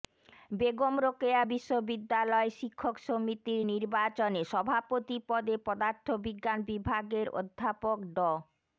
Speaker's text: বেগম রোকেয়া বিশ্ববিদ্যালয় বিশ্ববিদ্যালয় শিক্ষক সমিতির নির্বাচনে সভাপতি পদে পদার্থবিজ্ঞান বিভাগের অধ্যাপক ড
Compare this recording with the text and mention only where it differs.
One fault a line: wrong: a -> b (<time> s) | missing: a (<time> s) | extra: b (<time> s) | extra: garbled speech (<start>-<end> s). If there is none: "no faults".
missing: বিশ্ববিদ্যালয় (2.5 s)